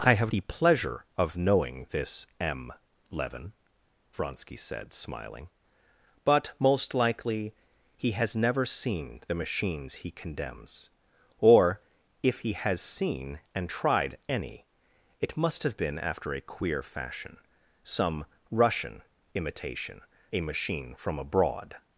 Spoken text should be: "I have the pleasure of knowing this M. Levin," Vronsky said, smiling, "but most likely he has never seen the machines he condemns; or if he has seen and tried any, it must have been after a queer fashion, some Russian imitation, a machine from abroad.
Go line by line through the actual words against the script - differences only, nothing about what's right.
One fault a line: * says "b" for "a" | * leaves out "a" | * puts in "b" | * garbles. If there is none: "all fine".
all fine